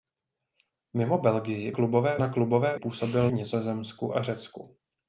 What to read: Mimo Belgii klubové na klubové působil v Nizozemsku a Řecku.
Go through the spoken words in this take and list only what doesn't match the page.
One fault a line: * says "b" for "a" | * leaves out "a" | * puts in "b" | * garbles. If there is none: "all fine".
all fine